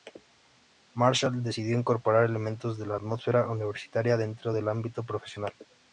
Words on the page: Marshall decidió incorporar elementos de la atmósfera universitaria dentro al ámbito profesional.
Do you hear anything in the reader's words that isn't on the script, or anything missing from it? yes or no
yes